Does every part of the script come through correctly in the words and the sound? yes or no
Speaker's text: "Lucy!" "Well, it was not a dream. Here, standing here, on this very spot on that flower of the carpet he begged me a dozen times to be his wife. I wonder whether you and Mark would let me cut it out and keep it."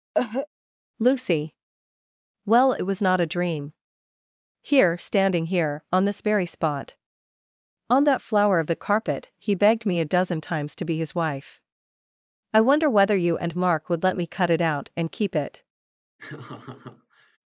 no